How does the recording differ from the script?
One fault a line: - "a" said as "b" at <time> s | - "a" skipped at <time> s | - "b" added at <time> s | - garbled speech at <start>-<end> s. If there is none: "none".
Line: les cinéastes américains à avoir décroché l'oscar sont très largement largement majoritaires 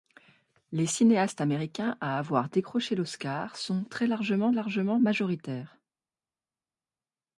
none